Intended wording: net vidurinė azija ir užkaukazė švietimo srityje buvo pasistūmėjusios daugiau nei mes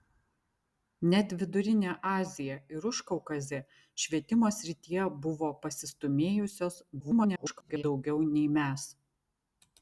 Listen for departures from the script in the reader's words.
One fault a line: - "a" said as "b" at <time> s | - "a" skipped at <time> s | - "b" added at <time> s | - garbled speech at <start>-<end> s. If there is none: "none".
- garbled speech at 7.0-7.8 s